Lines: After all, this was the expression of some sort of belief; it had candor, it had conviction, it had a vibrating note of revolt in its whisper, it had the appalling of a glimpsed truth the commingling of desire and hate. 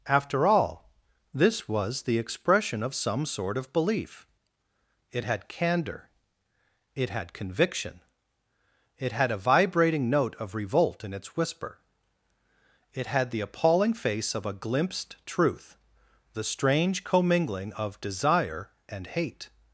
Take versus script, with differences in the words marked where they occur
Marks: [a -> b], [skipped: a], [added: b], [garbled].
After all, this was the expression of some sort of belief; it had candor, it had conviction, it had a vibrating note of revolt in its whisper, it had the appalling [added: face] of a glimpsed truth the [added: strange] commingling of desire and hate.